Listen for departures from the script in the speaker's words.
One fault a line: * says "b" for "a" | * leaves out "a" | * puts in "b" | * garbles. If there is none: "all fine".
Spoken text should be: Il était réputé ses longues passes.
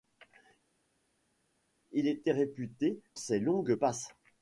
all fine